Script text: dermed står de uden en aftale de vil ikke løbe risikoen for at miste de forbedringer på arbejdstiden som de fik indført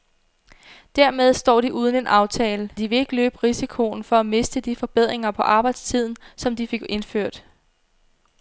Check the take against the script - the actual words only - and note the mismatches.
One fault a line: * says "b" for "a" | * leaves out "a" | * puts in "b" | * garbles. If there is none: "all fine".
all fine